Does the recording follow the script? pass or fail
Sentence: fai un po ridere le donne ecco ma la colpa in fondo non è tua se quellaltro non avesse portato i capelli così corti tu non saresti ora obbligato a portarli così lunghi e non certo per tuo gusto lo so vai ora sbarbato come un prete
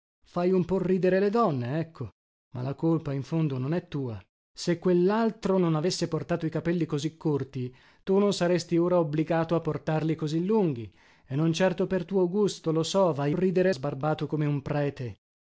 fail